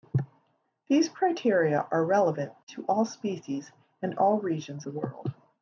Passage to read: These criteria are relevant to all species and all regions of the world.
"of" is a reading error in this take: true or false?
true